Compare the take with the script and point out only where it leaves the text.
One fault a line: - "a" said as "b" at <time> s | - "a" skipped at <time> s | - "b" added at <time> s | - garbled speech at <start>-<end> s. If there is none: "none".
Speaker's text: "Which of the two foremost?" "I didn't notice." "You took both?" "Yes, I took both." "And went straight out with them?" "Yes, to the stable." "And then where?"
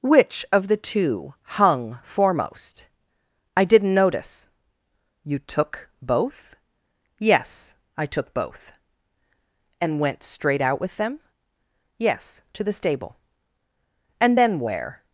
- "hung" added at 1.4 s